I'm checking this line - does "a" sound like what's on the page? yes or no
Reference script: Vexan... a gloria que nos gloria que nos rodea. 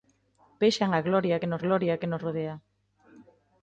yes